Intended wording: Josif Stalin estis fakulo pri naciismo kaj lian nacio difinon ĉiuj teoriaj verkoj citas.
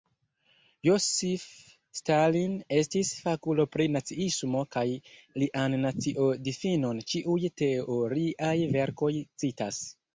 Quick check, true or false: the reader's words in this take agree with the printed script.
true